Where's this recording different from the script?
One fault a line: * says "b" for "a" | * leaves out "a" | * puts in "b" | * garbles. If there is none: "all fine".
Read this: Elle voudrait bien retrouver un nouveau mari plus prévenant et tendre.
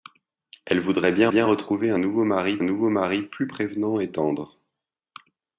* puts in "bien"
* puts in "nouveau mari"